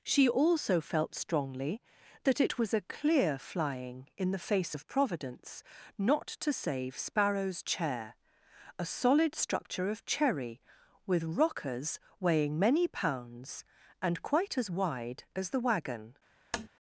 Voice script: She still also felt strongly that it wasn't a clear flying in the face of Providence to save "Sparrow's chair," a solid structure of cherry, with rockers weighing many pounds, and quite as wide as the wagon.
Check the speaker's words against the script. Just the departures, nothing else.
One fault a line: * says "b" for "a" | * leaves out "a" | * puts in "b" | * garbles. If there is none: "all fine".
* leaves out "still"
* says "was" for "wasn't"
* puts in "not"